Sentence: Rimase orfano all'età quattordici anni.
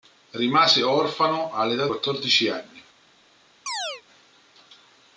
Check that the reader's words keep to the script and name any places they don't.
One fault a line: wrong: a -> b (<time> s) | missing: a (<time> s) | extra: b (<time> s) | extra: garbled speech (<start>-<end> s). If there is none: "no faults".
no faults